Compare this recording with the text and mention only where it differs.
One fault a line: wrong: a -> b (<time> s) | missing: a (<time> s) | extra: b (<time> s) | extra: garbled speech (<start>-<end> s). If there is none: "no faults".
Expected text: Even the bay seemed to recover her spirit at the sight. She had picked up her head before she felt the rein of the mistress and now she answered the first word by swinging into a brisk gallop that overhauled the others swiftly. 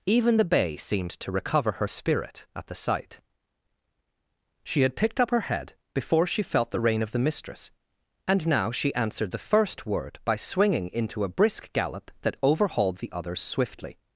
no faults